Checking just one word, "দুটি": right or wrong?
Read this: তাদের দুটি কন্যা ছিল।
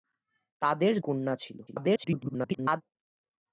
wrong